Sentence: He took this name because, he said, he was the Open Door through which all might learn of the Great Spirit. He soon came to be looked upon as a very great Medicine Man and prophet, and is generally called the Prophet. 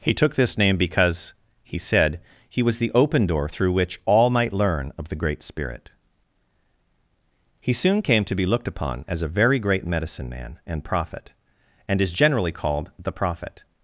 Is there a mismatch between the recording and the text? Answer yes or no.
no